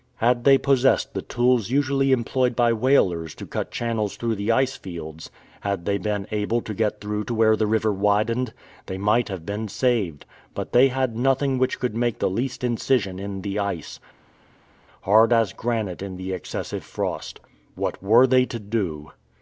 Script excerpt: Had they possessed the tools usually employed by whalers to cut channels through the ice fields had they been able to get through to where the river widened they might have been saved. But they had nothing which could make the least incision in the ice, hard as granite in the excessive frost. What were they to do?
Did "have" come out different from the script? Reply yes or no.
no